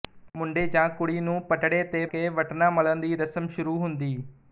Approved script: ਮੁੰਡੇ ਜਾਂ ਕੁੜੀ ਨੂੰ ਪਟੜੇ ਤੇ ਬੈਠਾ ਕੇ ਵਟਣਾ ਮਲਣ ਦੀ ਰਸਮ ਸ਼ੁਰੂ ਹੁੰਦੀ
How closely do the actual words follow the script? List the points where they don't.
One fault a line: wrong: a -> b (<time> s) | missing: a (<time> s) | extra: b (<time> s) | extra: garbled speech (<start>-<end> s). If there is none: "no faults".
missing: ਬੈਠਾ (2.0 s)